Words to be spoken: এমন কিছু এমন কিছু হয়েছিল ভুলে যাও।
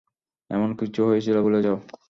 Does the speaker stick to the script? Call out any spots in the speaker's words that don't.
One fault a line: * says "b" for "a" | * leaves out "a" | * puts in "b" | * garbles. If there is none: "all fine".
* leaves out "এমন কিছু"